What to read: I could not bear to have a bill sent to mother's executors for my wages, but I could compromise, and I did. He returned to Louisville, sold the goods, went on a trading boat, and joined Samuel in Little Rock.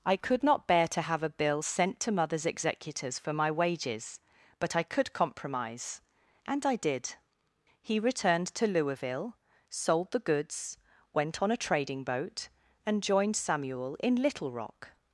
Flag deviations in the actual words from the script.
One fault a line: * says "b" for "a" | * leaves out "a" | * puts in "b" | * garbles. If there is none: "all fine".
all fine